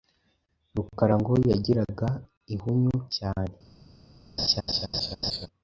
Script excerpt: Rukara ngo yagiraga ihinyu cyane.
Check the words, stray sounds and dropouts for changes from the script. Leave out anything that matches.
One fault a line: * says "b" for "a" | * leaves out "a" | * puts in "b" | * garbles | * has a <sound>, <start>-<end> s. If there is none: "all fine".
* has a laugh, 4.4-5.5 s